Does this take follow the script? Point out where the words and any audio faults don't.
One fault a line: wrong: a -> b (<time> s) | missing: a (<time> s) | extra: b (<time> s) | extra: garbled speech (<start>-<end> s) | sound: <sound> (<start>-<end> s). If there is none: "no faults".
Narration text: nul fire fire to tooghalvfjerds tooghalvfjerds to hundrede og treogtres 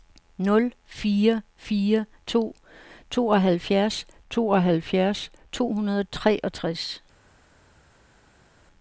no faults